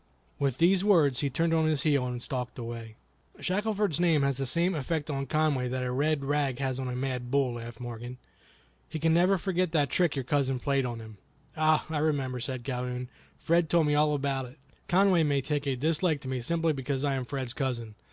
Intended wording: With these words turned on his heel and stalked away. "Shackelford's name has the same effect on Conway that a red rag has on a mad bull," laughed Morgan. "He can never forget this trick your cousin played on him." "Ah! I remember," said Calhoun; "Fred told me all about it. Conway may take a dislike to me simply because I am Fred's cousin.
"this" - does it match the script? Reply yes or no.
no